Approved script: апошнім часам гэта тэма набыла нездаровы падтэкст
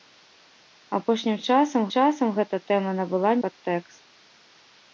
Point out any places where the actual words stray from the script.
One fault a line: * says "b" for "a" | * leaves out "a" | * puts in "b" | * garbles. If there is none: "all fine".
* puts in "часам"
* leaves out "нездаровы"